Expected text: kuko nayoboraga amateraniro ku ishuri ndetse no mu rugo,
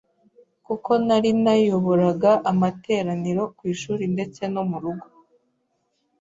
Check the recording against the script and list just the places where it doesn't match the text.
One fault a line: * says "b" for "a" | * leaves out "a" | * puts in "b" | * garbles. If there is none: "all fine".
* puts in "nari"